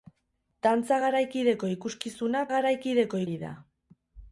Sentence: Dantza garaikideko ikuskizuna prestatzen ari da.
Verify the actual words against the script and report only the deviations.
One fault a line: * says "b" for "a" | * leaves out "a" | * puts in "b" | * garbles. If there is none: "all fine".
* says "garaikideko" for "prestatzen"